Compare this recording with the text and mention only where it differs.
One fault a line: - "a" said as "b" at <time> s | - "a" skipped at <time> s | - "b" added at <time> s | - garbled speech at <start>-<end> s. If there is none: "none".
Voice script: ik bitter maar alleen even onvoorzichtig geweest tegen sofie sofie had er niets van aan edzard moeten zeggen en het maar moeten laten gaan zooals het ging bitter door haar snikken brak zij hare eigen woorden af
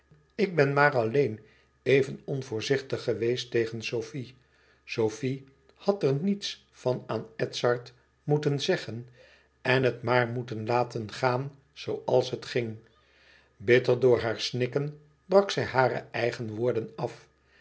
- "bitter" said as "ben" at 0.6 s